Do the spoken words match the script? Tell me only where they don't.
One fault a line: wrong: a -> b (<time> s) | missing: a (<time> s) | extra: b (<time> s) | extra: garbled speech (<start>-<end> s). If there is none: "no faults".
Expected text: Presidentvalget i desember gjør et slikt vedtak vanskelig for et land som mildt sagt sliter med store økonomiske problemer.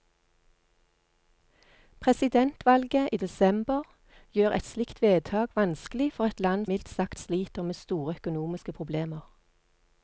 missing: som (6.7 s)